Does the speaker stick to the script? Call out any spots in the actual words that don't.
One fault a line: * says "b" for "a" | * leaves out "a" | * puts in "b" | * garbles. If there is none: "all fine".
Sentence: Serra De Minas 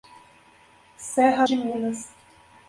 all fine